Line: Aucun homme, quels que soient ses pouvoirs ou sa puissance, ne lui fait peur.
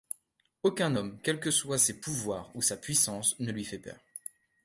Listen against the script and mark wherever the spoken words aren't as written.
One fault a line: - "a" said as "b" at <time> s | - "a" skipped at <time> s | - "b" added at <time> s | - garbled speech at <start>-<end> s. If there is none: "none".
none